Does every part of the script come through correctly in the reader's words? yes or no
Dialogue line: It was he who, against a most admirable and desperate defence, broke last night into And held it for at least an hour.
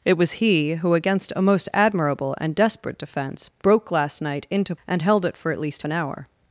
yes